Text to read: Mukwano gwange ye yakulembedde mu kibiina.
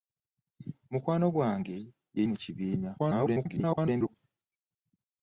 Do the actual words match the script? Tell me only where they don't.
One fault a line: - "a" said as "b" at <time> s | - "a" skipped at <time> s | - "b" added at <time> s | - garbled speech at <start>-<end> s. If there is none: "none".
- "yakulembedde" skipped at 2.2 s
- garbled speech at 3.0-4.1 s